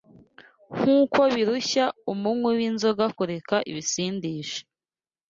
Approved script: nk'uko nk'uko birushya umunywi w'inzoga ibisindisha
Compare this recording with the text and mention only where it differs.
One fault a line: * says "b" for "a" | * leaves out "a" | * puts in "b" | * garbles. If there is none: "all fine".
* leaves out "nk'uko"
* puts in "kureka"